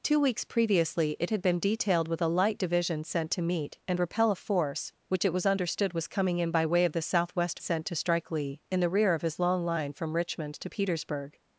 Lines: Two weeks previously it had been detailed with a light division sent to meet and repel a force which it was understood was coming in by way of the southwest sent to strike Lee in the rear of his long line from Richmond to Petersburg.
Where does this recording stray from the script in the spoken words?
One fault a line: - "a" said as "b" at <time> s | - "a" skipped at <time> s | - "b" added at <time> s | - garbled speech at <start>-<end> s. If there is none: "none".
none